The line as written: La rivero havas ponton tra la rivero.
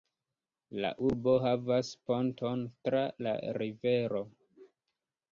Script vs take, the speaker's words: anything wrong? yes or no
yes